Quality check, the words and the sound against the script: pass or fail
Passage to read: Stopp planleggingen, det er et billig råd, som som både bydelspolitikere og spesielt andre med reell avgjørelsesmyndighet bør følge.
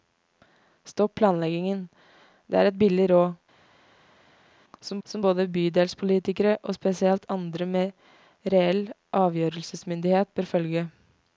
pass